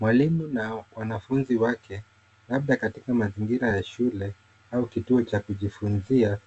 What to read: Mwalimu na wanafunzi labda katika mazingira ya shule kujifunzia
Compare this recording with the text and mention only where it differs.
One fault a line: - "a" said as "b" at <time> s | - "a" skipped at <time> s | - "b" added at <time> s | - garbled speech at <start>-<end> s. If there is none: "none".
- "wake" added at 1.6 s
- "au kituo cha" added at 4.7 s